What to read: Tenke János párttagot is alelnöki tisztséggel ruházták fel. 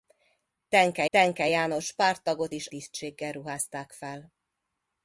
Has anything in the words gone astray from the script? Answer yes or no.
yes